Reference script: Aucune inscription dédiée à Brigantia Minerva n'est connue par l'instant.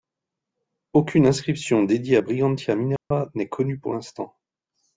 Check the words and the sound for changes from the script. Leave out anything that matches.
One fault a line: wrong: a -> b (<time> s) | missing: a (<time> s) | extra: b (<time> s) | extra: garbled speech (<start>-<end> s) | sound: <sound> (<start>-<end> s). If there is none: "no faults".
sound: dropout (3.0-3.1 s)
wrong: par -> pour (3.8 s)